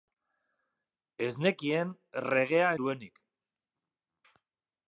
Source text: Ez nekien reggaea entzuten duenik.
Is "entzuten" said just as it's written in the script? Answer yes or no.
no